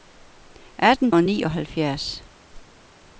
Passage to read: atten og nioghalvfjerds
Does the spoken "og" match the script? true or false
true